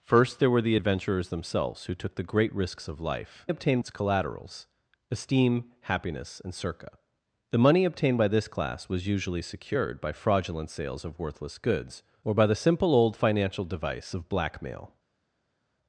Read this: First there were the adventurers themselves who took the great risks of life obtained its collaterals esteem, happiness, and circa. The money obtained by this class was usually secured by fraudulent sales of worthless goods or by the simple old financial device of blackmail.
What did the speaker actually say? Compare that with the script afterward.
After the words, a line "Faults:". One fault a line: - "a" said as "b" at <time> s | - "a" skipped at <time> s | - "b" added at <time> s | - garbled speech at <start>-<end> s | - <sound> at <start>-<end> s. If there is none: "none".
First there were the adventurers themselves who took the great risks of life obtained its collaterals esteem, happiness, and circa. The money obtained by this class was usually secured by fraudulent sales of worthless goods or by the simple old financial device of blackmail.
Faults:
none